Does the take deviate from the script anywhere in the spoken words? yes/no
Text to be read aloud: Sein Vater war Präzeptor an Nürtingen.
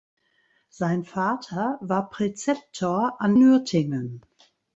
no